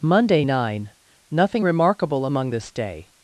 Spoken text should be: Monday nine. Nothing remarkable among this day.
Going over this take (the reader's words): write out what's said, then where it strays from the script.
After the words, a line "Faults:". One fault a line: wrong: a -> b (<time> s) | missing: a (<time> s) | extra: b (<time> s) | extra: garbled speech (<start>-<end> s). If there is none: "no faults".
Monday nine. Nothing remarkable among this day.
Faults:
no faults